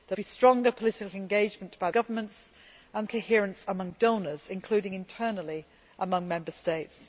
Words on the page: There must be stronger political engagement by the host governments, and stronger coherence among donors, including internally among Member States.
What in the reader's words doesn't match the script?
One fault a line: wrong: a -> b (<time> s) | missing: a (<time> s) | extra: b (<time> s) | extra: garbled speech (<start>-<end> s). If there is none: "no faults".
missing: must (0.2 s)
missing: the host (1.9 s)
missing: stronger (3.1 s)